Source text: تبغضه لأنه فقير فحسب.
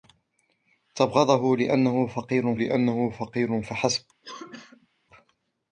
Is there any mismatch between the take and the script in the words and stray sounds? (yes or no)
yes